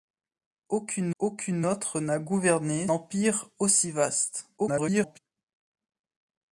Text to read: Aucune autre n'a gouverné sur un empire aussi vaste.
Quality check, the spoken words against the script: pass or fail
fail